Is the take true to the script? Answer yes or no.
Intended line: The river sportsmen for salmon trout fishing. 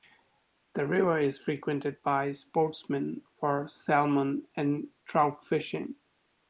no